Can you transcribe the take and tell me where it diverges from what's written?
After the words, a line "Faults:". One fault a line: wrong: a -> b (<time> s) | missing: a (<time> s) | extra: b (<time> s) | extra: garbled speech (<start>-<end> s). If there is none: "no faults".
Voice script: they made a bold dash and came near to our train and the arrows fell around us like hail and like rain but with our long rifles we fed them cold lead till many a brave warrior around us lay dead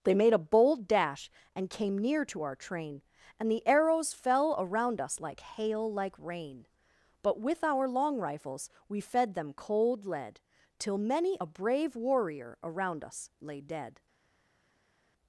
they made a bold dash and came near to our train and the arrows fell around us like hail like rain but with our long rifles we fed them cold lead till many a brave warrior around us lay dead
Faults:
missing: and (5.9 s)